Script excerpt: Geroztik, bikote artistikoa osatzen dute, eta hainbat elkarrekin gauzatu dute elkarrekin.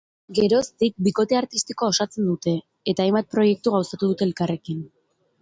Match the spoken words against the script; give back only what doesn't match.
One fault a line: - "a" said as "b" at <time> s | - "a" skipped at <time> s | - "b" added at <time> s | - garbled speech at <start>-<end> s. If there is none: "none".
- "elkarrekin" said as "proiektu" at 3.4 s